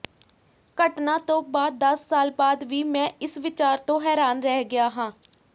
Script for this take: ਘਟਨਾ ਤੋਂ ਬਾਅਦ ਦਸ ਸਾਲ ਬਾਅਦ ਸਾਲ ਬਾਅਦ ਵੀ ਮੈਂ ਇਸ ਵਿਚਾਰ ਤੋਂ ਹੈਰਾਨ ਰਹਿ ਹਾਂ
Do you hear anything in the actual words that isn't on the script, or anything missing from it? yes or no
yes